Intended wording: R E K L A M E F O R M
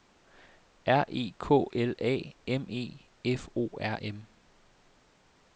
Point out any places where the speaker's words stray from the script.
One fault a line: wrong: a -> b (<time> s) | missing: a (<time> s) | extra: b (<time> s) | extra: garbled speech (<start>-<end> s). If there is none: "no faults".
no faults